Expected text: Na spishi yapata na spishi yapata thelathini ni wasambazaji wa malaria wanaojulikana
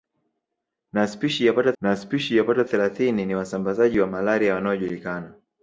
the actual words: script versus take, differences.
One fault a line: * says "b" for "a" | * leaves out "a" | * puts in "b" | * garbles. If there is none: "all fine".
all fine